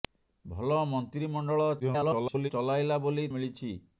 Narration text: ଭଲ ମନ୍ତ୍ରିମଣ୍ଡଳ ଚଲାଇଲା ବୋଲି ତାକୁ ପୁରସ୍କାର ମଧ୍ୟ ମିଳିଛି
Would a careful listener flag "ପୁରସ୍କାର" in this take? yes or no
yes